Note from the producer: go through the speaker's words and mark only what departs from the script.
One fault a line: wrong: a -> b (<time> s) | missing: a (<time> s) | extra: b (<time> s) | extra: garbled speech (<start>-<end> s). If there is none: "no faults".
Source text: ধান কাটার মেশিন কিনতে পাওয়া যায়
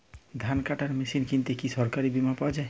extra: কি সরকারী বিমা (1.5 s)